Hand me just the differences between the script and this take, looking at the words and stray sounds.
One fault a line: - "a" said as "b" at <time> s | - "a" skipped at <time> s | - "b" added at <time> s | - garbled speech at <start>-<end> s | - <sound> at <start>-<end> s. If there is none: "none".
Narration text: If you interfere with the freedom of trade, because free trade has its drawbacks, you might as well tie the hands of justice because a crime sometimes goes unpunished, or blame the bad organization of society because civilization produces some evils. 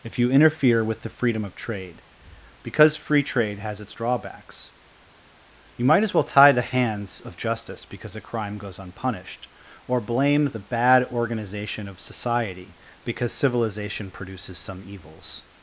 - "sometimes" skipped at 8.6 s